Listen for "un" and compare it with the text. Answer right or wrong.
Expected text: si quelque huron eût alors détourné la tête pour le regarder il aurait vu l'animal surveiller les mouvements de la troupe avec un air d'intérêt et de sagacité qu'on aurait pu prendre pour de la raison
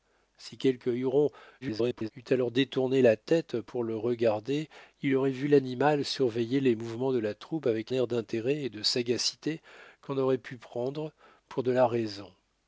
wrong